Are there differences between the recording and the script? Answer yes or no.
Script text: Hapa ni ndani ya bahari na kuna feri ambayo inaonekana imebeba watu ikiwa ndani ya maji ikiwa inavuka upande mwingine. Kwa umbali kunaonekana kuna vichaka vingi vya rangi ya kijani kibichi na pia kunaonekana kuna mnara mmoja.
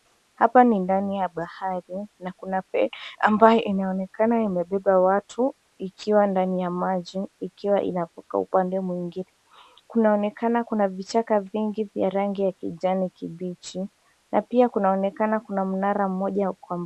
yes